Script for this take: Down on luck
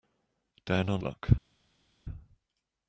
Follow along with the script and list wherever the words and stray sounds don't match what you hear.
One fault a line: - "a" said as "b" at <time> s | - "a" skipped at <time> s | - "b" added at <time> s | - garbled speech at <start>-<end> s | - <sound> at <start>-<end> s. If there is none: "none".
none